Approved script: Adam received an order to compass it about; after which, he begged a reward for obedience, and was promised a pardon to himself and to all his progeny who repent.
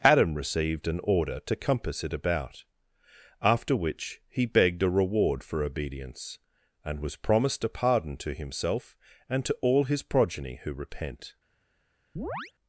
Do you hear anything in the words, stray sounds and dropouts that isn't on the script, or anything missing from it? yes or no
yes